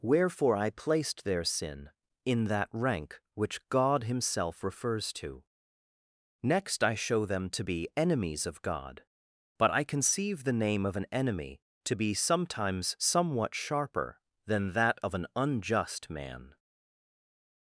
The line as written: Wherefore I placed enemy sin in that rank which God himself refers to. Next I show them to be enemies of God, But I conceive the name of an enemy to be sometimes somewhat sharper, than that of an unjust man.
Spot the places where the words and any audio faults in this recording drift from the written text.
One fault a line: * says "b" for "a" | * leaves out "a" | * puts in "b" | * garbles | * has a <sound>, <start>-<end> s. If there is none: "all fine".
* says "their" for "enemy"